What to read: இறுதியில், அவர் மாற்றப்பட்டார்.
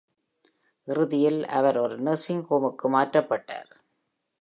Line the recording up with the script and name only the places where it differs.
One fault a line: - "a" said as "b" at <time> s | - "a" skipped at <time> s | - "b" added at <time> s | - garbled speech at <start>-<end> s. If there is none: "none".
- "ஒரு நர்சிங் ஹோமுக்கு" added at 1.8 s